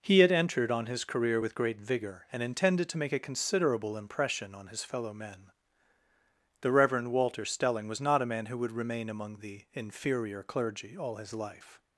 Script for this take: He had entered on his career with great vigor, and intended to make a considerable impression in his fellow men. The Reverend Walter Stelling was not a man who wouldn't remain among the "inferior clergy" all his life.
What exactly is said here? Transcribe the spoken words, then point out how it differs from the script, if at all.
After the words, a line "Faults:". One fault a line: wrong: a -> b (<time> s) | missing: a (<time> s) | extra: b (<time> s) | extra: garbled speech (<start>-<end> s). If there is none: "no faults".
He had entered on his career with great vigor, and intended to make a considerable impression on his fellow men. The Reverend Walter Stelling was not a man who would remain among the "inferior clergy" all his life.
Faults:
wrong: in -> on (4.5 s)
wrong: wouldn't -> would (8.6 s)